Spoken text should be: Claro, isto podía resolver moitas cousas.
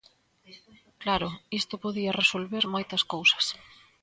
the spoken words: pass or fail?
pass